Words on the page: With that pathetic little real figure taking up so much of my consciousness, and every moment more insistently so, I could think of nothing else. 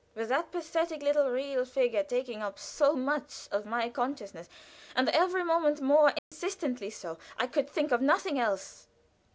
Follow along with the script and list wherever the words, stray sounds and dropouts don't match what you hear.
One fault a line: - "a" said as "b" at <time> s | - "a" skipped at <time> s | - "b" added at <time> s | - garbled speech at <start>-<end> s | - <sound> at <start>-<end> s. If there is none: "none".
- dropout at 6.2-6.3 s